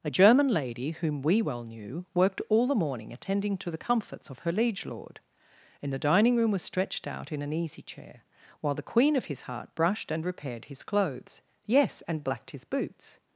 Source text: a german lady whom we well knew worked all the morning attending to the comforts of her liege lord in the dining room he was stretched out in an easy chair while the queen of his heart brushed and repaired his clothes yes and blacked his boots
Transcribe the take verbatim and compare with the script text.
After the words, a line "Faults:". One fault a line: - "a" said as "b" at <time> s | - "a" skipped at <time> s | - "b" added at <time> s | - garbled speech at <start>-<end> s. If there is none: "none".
a german lady whom we well knew worked all the morning attending to the comforts of her liege lord in the dining room was stretched out in an easy chair while the queen of his heart brushed and repaired his clothes yes and blacked his boots
Faults:
- "he" skipped at 6.5 s